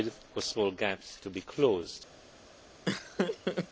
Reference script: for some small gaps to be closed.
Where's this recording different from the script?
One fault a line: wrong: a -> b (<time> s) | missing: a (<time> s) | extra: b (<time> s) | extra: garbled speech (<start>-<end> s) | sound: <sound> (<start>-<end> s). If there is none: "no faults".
missing: some (0.4 s)
sound: laugh (2.9-3.7 s)